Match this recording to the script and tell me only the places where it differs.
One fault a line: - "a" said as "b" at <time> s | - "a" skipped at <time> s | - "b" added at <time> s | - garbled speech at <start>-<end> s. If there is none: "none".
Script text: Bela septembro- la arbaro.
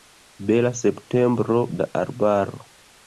none